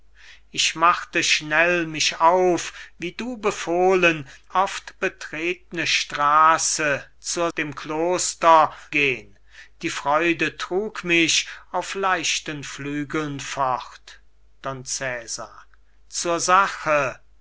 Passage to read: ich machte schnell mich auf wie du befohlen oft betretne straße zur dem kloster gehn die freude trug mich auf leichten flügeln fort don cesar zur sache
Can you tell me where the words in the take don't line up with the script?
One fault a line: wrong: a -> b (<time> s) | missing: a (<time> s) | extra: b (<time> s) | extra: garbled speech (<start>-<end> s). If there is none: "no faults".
no faults